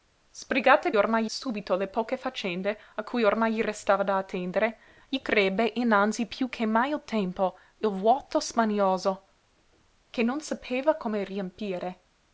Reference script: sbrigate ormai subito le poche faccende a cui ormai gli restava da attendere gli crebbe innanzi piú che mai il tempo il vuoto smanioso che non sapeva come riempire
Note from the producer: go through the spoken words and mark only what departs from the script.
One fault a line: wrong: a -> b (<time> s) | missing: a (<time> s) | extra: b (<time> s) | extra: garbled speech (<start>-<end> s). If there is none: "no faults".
no faults